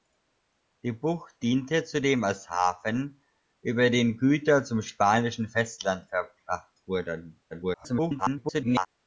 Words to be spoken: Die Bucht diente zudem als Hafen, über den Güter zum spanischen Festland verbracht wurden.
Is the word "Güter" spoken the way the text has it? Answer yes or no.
yes